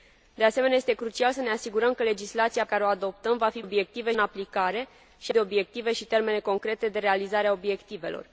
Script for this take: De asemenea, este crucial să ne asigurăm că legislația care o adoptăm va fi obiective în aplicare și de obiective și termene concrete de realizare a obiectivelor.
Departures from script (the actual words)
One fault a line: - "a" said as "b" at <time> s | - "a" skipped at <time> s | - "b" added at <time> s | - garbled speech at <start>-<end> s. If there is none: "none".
none